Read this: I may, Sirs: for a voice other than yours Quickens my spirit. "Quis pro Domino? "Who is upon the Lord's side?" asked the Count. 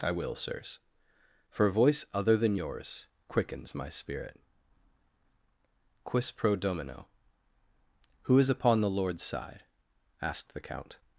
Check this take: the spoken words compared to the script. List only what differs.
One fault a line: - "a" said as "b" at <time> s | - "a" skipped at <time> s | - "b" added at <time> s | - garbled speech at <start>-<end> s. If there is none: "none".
- "may" said as "will" at 0.1 s